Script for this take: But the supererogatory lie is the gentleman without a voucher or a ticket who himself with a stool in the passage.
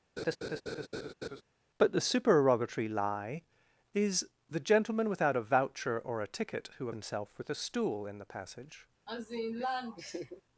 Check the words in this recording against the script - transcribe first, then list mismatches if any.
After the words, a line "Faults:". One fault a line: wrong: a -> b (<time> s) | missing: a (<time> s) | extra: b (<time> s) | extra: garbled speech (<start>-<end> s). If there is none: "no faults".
But the supererogatory lie is the gentleman without a voucher or a ticket who himself with a stool in the passage.
Faults:
no faults